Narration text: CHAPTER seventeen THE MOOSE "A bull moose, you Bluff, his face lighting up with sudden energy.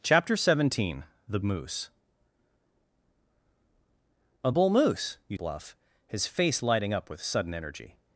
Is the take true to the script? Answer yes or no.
yes